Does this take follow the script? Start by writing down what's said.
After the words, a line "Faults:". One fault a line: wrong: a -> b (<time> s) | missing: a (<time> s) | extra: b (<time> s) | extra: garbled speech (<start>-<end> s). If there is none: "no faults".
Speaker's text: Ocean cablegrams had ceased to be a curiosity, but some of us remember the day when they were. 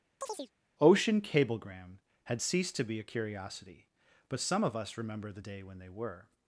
Ocean cablegram had ceased to be a curiosity, but some of us remember the day when they were.
Faults:
wrong: cablegrams -> cablegram (1.2 s)